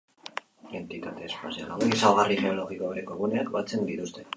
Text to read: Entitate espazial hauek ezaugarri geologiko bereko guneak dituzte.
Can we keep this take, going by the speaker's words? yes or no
no